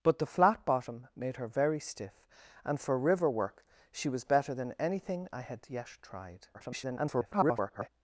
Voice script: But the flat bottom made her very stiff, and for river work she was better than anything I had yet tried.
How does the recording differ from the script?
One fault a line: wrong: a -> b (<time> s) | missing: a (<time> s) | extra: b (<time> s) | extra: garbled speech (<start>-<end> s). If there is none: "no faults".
extra: garbled speech (6.5-7.9 s)